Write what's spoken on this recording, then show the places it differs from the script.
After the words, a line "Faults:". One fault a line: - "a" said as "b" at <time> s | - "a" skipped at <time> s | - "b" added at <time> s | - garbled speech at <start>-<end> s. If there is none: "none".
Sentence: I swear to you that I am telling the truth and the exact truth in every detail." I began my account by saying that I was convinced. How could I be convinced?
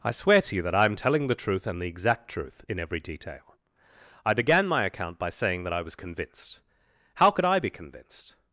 I swear to you that I am telling the truth and the exact truth in every detail." I began my account by saying that I was convinced. How could I be convinced?
Faults:
none